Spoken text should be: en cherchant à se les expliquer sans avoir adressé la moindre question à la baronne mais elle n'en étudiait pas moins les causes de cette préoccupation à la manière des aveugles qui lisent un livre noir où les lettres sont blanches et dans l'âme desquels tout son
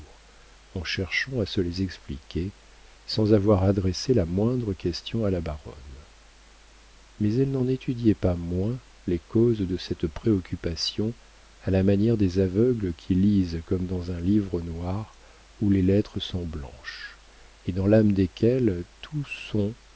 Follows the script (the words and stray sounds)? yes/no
no